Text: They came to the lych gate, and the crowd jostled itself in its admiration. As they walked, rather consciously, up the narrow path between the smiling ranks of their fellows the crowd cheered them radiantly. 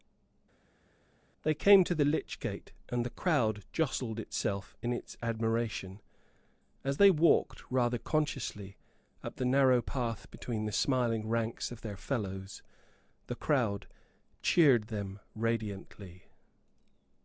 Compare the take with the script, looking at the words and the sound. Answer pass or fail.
pass